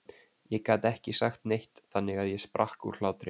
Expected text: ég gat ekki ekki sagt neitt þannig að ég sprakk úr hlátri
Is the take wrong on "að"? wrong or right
right